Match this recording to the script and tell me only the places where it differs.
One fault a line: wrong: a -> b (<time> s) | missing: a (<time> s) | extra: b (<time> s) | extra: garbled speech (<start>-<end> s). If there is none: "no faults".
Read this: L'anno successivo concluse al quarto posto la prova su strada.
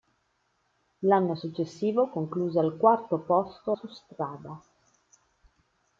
missing: la prova (3.8 s)